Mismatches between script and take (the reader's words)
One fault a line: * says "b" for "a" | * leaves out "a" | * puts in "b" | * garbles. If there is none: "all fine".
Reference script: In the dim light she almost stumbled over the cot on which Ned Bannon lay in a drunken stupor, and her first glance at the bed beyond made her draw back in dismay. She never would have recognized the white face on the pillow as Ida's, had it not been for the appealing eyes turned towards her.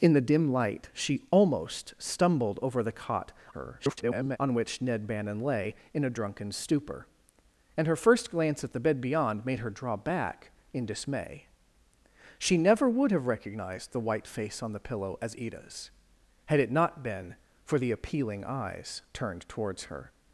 * garbles